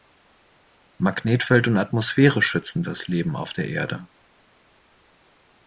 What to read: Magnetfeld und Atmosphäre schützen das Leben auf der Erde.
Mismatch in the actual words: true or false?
false